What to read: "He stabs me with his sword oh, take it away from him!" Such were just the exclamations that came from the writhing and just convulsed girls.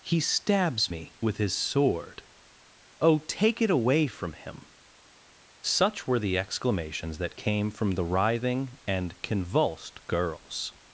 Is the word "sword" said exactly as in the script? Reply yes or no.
yes